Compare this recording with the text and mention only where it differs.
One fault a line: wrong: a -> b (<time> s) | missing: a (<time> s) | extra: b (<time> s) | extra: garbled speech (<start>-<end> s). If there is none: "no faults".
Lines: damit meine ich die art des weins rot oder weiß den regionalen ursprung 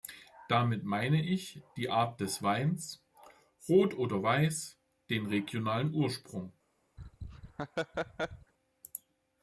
no faults